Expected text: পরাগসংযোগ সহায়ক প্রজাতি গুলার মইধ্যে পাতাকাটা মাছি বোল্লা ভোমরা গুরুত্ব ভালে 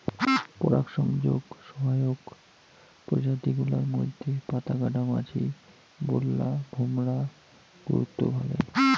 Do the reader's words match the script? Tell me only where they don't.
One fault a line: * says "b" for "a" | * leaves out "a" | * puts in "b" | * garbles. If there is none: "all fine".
all fine